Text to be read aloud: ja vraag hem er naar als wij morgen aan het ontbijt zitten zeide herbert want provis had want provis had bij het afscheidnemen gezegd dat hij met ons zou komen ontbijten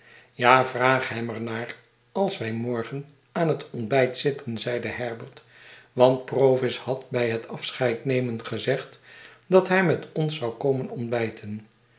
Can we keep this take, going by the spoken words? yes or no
no